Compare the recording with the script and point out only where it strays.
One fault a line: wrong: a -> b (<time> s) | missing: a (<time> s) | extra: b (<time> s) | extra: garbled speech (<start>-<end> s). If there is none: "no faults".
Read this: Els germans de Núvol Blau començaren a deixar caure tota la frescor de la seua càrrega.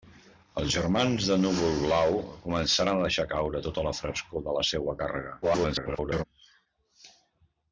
extra: garbled speech (5.4-6.2 s)